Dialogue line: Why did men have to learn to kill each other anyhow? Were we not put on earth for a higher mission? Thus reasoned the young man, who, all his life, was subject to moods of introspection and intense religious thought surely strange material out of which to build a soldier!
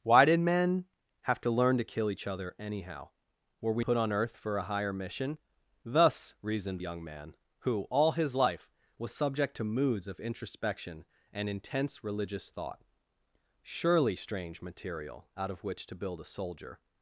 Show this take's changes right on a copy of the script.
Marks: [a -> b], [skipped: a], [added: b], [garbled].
Why did men have to learn to kill each other anyhow? Were we [skipped: not] put on earth for a higher mission? Thus reasoned [skipped: the] young man, who, all his life, was subject to moods of introspection and intense religious thought surely strange material out of which to build a soldier!